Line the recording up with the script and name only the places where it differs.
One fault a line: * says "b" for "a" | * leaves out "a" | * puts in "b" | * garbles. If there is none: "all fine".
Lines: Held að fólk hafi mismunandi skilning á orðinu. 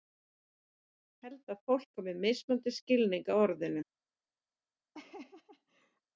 all fine